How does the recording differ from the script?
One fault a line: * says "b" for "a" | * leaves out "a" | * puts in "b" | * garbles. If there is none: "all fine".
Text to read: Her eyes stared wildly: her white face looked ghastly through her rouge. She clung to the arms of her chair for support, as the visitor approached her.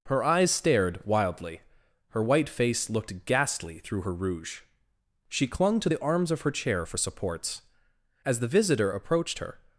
* says "supports" for "support"